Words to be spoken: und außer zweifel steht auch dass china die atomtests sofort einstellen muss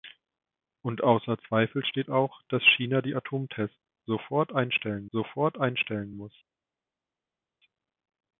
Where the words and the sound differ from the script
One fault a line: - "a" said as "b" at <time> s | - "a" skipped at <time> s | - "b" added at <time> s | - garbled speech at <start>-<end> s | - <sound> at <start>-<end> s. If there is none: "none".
- "sofort einstellen" added at 5.1 s